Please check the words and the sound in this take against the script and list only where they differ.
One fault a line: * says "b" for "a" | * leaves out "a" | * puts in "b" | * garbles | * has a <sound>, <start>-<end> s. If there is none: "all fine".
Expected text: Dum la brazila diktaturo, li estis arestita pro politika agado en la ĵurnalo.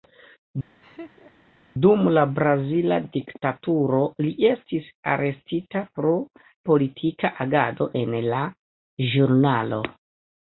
* has a laugh, 0.8-1.5 s